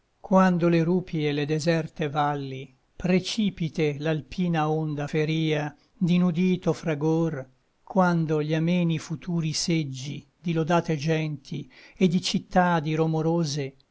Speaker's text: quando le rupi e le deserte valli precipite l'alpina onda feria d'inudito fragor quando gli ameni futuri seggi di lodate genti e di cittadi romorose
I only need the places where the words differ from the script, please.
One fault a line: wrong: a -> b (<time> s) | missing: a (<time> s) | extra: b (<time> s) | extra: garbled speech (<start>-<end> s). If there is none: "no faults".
no faults